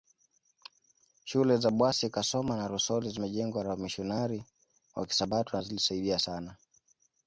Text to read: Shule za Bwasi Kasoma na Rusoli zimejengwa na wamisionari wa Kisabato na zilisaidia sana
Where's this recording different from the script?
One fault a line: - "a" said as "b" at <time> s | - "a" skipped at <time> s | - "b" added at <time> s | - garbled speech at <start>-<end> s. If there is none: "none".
none